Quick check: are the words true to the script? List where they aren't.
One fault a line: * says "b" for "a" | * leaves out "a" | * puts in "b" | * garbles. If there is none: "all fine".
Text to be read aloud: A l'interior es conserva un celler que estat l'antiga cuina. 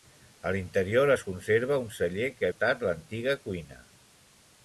all fine